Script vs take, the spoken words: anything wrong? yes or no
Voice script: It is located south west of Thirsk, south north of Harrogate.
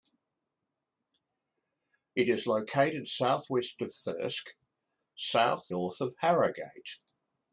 no